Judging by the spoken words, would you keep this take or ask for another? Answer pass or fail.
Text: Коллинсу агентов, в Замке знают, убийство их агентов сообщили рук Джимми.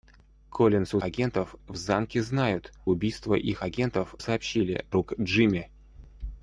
pass